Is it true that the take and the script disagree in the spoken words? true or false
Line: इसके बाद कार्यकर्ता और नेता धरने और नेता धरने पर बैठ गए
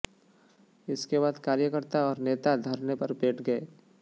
true